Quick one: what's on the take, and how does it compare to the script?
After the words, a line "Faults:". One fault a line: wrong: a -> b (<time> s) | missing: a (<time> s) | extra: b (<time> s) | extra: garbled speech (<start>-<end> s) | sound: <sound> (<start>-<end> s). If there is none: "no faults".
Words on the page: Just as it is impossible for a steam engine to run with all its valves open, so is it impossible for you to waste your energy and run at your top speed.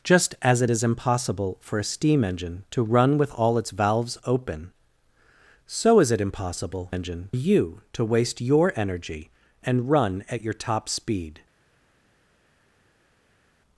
Just as it is impossible for a steam engine to run with all its valves open, so is it impossible engine you to waste your energy and run at your top speed.
Faults:
wrong: for -> engine (6.9 s)